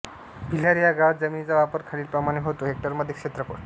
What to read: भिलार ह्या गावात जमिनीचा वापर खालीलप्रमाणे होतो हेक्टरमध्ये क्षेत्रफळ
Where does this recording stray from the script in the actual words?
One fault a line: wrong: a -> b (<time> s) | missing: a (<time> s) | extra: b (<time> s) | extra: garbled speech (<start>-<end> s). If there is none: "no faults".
no faults